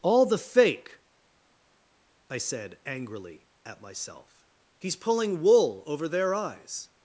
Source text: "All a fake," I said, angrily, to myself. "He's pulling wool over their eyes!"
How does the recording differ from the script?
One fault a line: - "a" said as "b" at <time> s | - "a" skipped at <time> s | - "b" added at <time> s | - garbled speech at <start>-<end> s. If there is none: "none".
- "a" said as "the" at 0.2 s
- "to" said as "at" at 3.6 s